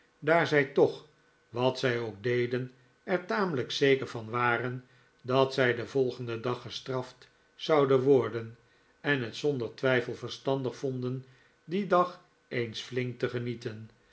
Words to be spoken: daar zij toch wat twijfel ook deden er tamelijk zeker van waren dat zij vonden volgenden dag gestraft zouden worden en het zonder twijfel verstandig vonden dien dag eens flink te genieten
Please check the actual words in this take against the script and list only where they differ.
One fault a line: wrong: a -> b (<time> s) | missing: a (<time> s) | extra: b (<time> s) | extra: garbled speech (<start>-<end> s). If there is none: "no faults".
wrong: twijfel -> zij (1.8 s)
wrong: vonden -> den (5.8 s)